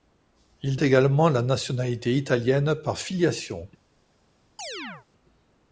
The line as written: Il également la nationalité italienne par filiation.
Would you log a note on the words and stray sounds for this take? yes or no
yes